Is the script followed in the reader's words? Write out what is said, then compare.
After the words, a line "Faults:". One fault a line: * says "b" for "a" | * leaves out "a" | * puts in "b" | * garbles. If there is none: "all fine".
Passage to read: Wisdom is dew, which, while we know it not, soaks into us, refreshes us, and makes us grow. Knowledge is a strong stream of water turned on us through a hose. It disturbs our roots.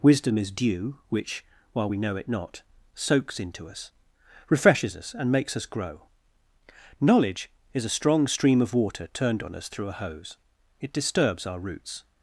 Wisdom is dew, which, while we know it not, soaks into us, refreshes us, and makes us grow. Knowledge is a strong stream of water turned on us through a hose. It disturbs our roots.
Faults:
all fine